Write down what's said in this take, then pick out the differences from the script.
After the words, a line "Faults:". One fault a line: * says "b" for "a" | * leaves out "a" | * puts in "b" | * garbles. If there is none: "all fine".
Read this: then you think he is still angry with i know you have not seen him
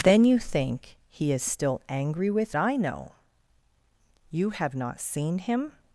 then you think he is still angry with i know you have not seen him
Faults:
all fine